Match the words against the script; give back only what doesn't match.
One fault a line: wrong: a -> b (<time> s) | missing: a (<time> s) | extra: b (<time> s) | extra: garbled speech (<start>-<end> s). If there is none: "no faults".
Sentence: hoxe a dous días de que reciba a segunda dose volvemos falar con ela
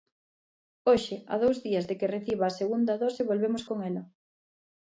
missing: falar (3.6 s)